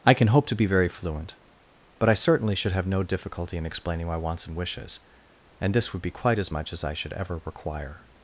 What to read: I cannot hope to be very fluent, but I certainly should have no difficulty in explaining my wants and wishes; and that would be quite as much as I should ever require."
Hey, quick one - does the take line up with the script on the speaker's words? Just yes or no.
no